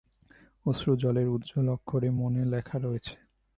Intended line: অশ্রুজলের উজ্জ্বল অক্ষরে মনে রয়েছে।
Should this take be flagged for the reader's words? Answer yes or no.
yes